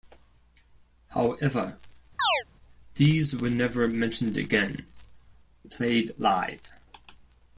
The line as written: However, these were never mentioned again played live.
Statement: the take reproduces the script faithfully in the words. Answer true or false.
true